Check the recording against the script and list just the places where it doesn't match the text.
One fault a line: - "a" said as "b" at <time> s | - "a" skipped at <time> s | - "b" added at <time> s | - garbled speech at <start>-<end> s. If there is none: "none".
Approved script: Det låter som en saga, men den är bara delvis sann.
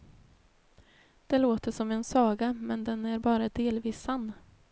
none